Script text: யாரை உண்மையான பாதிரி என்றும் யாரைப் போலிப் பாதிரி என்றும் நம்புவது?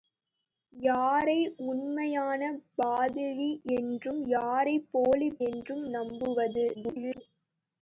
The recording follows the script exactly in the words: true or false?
false